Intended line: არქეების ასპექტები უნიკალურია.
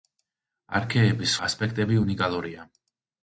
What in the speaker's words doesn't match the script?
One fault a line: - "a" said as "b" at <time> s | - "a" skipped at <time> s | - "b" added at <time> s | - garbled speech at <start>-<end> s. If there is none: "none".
none